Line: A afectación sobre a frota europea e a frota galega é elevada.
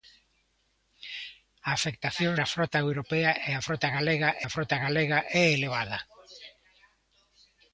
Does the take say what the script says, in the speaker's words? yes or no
no